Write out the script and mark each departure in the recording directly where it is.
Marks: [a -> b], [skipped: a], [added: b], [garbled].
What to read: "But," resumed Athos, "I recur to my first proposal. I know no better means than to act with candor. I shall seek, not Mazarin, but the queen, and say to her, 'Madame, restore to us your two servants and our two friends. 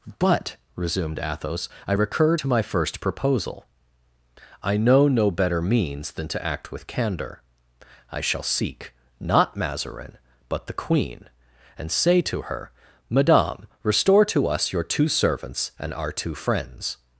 "But," resumed Athos, "I recur to my first proposal. I know no better means than to act with candor. I shall seek, not Mazarin, but the queen, and say to her, 'Madame, restore to us your two servants and our two friends.